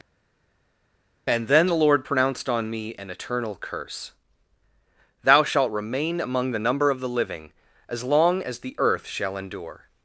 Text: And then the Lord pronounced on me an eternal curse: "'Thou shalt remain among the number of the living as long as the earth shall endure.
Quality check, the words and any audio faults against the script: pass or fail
pass